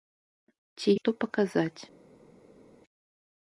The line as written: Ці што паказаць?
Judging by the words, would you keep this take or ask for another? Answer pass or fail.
pass